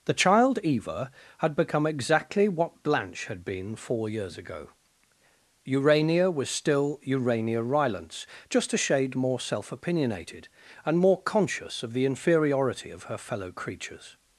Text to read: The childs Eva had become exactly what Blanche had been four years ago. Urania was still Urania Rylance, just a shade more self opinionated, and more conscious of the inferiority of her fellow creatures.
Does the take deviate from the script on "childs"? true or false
true